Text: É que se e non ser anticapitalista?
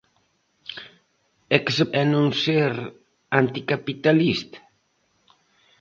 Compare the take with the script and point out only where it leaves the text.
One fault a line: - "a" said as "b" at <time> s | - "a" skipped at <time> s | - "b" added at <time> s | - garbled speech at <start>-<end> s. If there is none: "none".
none